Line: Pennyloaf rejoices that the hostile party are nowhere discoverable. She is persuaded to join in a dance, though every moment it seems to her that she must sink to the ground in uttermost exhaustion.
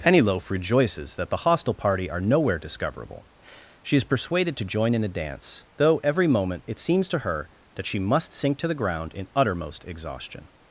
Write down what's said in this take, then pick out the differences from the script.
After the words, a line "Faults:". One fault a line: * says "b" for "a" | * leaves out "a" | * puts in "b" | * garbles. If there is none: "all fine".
Pennyloaf rejoices that the hostile party are nowhere discoverable. She is persuaded to join in a dance, though every moment it seems to her that she must sink to the ground in uttermost exhaustion.
Faults:
all fine